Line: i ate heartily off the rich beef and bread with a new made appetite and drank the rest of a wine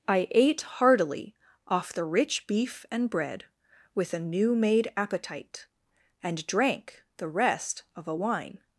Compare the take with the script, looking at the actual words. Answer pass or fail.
pass